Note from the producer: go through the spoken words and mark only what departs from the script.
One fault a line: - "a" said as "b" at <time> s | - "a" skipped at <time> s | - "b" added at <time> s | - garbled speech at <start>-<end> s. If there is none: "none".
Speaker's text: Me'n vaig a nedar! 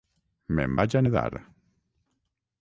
none